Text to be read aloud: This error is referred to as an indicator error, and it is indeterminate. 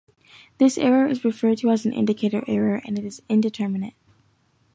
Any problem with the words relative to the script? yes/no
no